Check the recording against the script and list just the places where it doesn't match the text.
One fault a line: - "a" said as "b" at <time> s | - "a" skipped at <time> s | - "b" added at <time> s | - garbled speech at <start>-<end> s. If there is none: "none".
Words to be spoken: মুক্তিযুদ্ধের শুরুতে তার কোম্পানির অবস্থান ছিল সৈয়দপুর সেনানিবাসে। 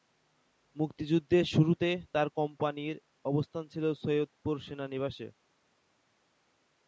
none